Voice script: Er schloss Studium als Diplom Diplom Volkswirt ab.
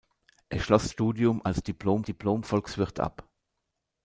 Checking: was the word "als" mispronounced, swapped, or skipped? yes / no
no